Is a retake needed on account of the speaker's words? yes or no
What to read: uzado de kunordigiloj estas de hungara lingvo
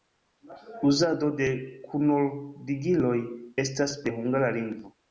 no